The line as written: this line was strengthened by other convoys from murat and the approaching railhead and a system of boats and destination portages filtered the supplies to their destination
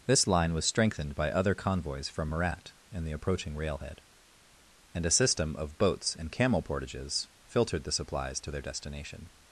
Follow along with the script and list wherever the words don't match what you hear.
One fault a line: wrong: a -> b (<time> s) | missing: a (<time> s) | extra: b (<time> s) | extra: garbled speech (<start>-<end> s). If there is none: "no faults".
wrong: destination -> camel (6.3 s)